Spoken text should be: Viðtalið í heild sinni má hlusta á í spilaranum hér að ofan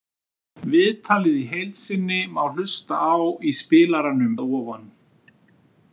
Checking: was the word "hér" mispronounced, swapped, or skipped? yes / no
yes